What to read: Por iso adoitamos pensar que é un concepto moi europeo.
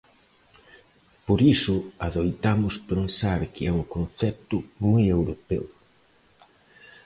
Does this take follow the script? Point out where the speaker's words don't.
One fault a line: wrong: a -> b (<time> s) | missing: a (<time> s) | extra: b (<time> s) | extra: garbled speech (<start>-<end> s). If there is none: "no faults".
no faults